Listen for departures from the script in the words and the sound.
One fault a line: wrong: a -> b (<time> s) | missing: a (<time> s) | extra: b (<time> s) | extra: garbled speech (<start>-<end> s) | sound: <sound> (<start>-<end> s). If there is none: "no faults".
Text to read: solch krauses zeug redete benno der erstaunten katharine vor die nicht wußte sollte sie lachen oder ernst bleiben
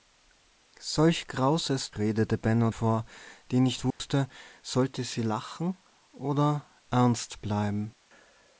missing: zeug (1.9 s)
missing: der erstaunten katharine (2.7 s)
sound: dropout (3.9-4.0 s)